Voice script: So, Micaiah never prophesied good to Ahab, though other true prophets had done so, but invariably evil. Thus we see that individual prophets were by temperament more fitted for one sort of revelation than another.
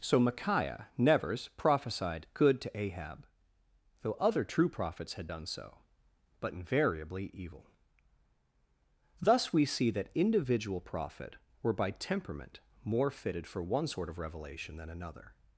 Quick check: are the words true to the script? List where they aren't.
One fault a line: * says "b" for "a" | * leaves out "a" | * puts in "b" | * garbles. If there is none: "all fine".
* says "nevers" for "never"
* says "prophet" for "prophets"